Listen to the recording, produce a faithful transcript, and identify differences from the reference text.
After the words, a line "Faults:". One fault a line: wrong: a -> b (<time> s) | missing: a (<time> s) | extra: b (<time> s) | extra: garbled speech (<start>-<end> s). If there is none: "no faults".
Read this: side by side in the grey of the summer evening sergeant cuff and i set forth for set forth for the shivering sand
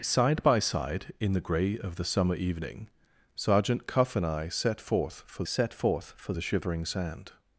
side by side in the grey of the summer evening sergeant cuff and i set forth for set forth for the shivering sand
Faults:
no faults